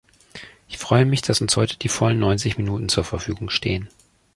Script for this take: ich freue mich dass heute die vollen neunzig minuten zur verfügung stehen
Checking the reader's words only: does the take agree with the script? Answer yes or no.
no